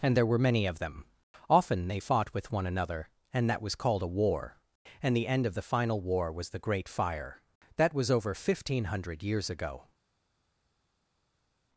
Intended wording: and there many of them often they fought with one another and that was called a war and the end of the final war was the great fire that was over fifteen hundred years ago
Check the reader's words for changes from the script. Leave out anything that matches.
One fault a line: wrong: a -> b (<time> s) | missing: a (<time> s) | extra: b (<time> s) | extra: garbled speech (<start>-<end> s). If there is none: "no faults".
extra: were (0.2 s)